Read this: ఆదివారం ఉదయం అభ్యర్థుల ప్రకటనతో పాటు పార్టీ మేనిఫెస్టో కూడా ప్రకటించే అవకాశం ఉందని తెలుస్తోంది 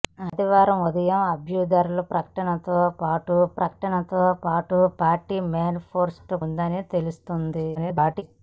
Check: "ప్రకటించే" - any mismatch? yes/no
yes